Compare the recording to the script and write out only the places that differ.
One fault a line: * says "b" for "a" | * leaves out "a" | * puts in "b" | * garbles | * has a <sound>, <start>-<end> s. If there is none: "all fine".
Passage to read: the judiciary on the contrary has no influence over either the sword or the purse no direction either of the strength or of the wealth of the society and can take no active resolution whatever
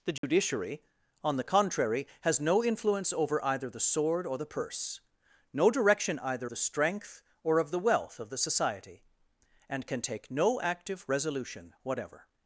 * has a dropout, 0.2-0.2 s
* leaves out "of"